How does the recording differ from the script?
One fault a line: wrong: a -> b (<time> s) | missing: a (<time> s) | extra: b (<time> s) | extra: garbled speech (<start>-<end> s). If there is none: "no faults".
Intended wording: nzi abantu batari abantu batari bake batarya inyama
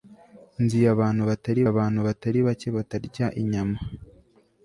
no faults